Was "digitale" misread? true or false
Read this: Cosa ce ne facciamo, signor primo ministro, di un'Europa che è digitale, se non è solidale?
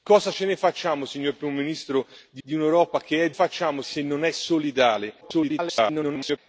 true